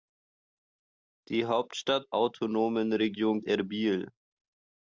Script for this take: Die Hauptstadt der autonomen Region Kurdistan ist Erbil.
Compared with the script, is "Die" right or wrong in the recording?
right